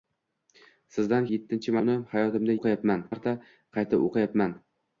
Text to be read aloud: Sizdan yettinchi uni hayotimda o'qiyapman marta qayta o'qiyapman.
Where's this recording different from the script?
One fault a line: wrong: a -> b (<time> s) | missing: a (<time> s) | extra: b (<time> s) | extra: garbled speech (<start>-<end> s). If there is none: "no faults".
no faults